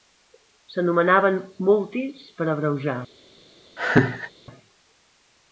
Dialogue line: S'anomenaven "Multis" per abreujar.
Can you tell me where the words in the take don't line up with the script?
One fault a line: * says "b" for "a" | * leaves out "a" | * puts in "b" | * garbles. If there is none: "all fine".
all fine